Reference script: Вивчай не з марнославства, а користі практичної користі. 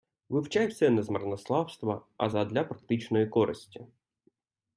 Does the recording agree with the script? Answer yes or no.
no